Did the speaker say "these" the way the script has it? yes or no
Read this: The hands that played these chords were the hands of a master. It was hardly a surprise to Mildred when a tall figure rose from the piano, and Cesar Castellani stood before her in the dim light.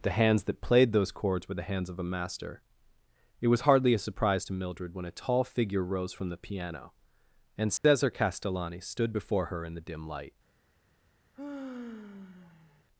no